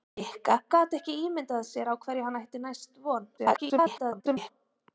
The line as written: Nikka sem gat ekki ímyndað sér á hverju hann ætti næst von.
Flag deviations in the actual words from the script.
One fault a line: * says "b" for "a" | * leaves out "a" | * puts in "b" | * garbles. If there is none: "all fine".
* leaves out "sem"
* garbles